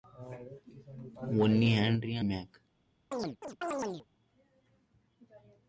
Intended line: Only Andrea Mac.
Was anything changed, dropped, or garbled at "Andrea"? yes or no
no